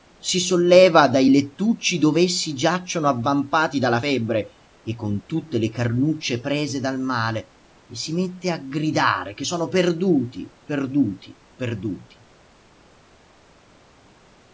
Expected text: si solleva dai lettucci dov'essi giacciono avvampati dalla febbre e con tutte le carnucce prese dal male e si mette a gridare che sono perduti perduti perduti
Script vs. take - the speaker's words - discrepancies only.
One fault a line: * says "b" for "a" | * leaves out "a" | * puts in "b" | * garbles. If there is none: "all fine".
all fine